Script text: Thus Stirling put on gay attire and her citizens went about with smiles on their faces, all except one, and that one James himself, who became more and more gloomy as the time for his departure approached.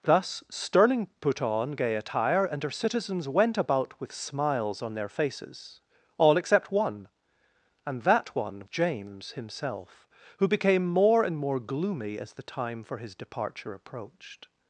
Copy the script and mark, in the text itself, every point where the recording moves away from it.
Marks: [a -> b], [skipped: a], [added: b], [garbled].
Thus Stirling put on gay attire and her citizens went about with smiles on their faces, all except one, and that one James himself, who became more and more gloomy as the time for his departure approached.